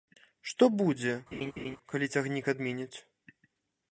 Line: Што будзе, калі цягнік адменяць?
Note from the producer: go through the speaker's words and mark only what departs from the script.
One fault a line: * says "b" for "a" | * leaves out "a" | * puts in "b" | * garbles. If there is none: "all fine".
all fine